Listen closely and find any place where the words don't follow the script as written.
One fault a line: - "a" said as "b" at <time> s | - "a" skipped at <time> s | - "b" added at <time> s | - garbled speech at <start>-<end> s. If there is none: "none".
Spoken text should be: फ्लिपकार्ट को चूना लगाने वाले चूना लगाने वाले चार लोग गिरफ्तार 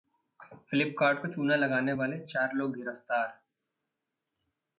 - "चूना लगाने वाले" skipped at 2.2 s